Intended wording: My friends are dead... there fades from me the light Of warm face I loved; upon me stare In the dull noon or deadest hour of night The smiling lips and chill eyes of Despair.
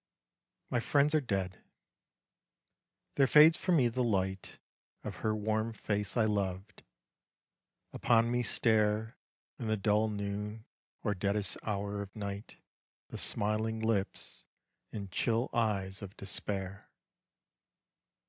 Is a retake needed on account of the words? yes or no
yes